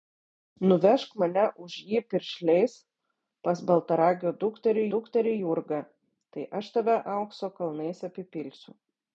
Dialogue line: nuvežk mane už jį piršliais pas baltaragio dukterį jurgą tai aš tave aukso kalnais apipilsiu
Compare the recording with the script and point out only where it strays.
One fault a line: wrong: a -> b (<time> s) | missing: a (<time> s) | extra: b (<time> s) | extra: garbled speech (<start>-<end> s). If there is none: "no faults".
extra: dukterį (5.0 s)